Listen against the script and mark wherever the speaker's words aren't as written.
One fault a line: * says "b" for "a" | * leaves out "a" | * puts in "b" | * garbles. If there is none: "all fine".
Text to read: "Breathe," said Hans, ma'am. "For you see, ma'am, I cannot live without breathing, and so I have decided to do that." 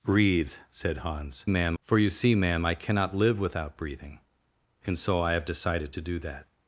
all fine